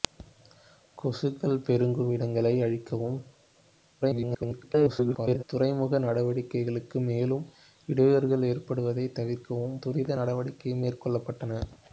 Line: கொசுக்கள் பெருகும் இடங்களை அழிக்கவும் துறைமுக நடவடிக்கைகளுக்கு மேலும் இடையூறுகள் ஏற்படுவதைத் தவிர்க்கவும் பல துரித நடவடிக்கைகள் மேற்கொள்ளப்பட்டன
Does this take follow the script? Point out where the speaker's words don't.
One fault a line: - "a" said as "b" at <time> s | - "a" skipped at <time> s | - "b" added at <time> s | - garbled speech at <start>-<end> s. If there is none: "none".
- garbled speech at 4.0-5.4 s
- "பல" skipped at 9.8 s